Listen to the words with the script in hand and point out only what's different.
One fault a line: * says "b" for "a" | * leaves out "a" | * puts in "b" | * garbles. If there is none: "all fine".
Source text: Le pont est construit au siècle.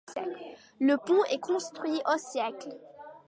all fine